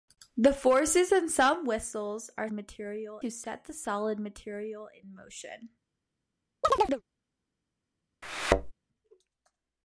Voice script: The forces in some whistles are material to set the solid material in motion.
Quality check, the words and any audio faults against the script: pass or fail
fail